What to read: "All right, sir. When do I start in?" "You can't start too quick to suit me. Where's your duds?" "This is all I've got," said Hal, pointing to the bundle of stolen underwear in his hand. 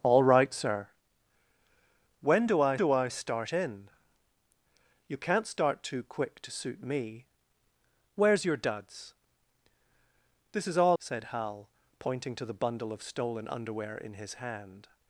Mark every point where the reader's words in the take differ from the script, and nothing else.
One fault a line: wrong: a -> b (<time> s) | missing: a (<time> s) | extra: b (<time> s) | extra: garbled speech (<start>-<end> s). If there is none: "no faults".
extra: do I (2.8 s)
missing: I've got (11.0 s)